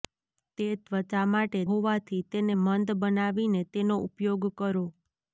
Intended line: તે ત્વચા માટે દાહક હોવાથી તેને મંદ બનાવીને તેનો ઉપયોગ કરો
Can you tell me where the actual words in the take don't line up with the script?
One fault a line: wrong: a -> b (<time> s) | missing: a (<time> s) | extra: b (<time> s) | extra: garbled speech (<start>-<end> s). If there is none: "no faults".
missing: દાહક (1.6 s)